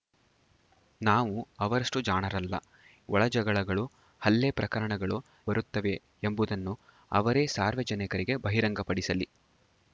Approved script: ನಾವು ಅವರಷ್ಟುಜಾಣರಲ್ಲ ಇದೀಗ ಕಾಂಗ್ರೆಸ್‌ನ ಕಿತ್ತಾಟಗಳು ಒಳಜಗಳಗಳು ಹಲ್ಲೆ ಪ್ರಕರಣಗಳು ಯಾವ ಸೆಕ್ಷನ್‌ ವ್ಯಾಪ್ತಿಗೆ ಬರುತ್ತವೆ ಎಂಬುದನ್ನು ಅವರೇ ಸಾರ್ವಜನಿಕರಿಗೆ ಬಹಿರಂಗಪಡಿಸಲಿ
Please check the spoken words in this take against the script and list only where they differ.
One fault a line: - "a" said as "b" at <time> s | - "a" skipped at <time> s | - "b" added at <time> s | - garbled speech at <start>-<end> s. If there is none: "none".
- "ಇದೀಗ ಕಾಂಗ್ರೆಸ್‌ನ ಕಿತ್ತಾಟಗಳು" skipped at 2.5 s
- "ಯಾವ ಸೆಕ್ಷನ್ ವ್ಯಾಪ್ತಿಗೆ" skipped at 5.2 s